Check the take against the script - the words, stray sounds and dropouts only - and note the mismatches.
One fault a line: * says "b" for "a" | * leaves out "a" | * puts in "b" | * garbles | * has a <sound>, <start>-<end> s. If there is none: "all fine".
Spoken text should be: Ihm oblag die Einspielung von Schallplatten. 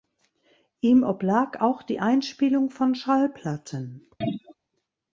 * puts in "auch"
* has a throat clearing, 4.2-4.6 s